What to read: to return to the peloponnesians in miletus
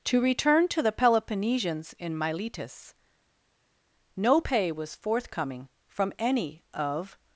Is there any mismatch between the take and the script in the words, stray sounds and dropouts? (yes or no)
yes